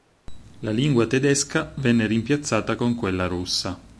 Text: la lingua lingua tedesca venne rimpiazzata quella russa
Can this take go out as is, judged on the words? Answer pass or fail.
fail